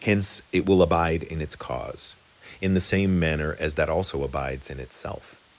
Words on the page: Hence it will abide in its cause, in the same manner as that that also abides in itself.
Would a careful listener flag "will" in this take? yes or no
no